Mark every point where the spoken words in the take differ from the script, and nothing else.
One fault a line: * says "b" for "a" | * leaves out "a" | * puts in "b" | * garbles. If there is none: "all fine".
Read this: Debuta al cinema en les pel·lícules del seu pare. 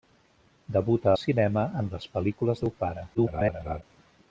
* leaves out "al"
* leaves out "del"
* garbles